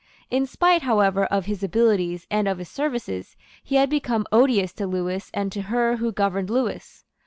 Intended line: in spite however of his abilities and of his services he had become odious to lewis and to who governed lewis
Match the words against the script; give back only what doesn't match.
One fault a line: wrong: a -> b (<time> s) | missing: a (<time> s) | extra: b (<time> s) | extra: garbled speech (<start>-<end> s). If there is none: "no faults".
extra: her (5.6 s)